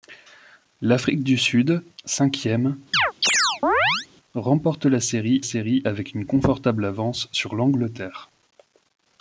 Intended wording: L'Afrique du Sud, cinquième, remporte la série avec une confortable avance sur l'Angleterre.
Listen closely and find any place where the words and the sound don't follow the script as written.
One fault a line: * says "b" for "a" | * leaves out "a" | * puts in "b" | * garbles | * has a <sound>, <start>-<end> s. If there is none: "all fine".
* has a chirp, 2.9-4.1 s
* puts in "série"